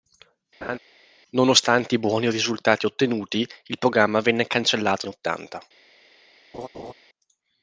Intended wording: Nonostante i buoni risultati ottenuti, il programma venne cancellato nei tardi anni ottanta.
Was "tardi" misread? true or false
true